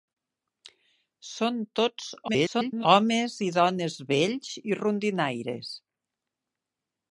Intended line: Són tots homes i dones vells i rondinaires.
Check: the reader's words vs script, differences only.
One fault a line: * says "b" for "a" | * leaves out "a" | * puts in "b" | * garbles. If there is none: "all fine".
* garbles